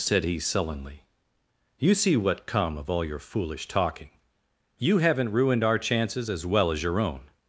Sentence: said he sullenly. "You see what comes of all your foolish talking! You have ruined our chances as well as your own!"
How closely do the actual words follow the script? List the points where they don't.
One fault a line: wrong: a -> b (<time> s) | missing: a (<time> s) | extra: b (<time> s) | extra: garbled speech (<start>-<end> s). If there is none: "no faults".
wrong: comes -> come (2.5 s)
wrong: have -> haven't (5.0 s)